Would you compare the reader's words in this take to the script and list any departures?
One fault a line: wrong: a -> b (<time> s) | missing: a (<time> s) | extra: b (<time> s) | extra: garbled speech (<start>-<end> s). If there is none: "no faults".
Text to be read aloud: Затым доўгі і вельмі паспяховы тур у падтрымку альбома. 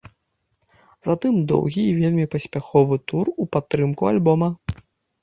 no faults